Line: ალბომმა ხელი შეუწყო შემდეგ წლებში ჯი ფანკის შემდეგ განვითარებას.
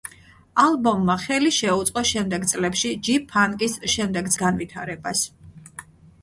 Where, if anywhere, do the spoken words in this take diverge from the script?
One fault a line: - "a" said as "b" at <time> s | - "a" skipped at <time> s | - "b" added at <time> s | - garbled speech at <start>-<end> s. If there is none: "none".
none